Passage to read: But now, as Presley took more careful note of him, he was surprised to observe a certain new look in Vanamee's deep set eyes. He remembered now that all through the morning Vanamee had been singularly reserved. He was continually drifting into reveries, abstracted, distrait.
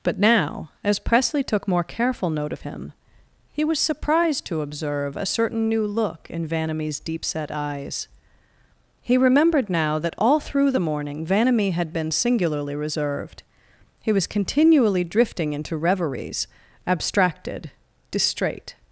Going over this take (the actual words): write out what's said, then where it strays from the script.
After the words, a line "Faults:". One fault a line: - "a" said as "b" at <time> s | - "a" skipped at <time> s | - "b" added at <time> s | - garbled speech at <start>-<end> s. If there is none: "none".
But now, as Presley took more careful note of him, he was surprised to observe a certain new look in Vanamee's deep set eyes. He remembered now that all through the morning Vanamee had been singularly reserved. He was continually drifting into reveries, abstracted, distrait.
Faults:
none